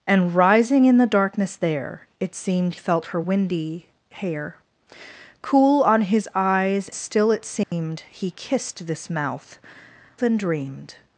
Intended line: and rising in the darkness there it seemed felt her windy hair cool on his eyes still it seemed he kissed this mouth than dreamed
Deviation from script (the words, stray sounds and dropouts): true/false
true